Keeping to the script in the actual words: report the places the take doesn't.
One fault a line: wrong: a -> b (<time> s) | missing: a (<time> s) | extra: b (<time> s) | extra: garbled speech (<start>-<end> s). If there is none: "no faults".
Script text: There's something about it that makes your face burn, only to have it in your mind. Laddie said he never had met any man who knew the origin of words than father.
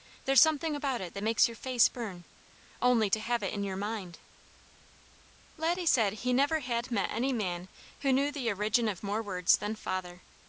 extra: more (9.0 s)